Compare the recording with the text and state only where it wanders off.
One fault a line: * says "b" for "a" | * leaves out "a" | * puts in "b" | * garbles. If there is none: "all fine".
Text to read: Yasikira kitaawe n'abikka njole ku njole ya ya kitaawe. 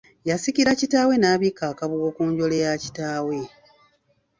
* says "akabugo" for "njole"
* leaves out "ya"